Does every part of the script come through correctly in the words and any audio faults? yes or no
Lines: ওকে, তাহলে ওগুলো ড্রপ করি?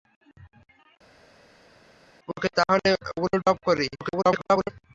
no